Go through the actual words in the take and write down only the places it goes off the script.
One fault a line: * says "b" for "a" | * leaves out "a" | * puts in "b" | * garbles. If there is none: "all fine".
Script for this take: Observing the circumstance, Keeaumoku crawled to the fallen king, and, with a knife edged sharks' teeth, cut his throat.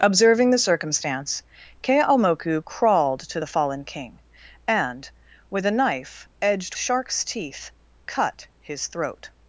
all fine